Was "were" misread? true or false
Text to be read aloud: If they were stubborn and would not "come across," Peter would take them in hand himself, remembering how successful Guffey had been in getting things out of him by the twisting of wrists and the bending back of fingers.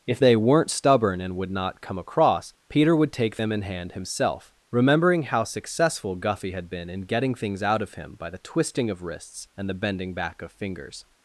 true